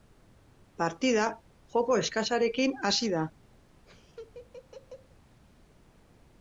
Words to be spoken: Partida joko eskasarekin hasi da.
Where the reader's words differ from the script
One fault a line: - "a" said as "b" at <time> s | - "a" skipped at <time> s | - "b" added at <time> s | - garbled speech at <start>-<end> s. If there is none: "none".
none